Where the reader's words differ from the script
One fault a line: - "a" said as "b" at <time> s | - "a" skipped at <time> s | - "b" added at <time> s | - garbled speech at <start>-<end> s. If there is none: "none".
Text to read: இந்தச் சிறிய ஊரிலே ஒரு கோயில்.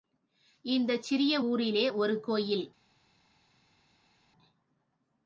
none